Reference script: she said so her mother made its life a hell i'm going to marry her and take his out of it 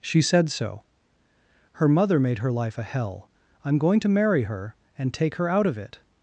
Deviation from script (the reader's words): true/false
true